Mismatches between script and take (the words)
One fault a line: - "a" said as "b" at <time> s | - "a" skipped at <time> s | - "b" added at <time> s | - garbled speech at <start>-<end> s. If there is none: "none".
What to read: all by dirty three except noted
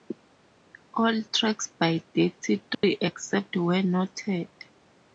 - "tracks" added at 1.3 s
- "where" added at 3.5 s